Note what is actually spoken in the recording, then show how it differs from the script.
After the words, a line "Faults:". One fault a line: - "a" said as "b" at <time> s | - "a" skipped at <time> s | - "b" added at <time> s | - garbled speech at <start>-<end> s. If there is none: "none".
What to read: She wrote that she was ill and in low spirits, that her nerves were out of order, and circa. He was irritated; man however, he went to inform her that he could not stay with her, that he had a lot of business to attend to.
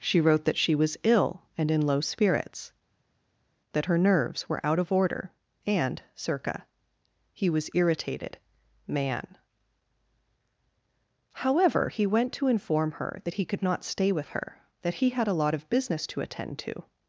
She wrote that she was ill and in low spirits, that her nerves were out of order, and circa. He was irritated; man however, he went to inform her that he could not stay with her, that he had a lot of business to attend to.
Faults:
none